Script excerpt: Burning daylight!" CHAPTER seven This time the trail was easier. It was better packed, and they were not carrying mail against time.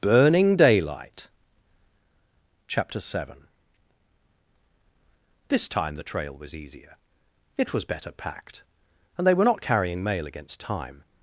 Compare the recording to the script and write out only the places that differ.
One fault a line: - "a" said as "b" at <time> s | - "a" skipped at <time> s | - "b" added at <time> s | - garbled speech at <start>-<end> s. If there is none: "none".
none